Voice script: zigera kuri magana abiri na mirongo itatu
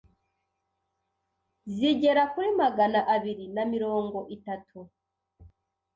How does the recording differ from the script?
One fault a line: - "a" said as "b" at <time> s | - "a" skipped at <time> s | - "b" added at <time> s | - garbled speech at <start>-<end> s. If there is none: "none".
none